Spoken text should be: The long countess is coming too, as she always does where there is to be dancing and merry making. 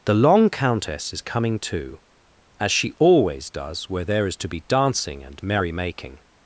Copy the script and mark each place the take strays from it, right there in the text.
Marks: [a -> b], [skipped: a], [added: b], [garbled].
The long countess is coming too, as she always does where there is to be dancing and merry making.